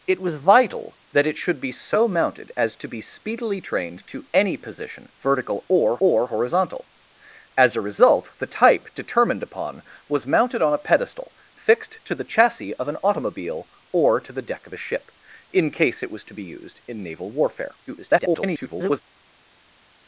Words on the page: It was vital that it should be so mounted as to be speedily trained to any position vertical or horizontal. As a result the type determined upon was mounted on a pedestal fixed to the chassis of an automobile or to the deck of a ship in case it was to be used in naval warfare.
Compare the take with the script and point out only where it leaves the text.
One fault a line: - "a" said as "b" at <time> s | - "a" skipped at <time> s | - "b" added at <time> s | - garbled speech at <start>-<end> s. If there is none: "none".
- "or" added at 6.0 s
- garbled speech at 17.9-19.0 s